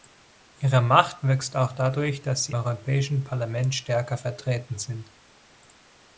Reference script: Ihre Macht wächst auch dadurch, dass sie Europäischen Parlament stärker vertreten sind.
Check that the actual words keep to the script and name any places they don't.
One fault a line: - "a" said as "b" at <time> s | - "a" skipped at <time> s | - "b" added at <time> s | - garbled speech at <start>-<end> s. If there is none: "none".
none